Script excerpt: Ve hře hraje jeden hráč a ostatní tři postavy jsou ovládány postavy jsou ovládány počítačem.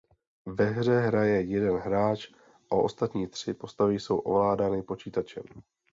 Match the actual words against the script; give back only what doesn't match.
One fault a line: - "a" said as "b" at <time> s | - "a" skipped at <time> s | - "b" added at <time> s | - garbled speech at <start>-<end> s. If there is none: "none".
- "postavy jsou ovládány" skipped at 4.8 s